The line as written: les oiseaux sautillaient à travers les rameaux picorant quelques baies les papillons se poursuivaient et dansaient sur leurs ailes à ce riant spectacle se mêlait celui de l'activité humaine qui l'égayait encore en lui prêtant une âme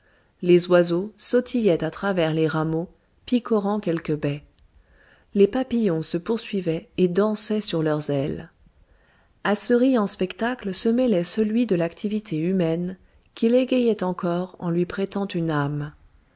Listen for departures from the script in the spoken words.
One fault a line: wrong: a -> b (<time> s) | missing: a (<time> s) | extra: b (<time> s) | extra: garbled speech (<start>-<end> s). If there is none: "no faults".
no faults